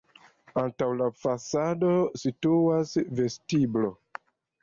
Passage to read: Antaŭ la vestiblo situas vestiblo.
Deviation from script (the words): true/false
true